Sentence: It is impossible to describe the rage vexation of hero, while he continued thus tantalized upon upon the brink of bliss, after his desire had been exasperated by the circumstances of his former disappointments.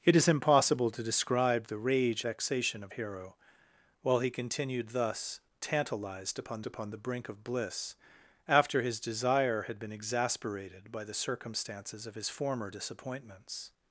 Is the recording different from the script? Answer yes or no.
no